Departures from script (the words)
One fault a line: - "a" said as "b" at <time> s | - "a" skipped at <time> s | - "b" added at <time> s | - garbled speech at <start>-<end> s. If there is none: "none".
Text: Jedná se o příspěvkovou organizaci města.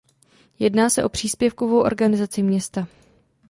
none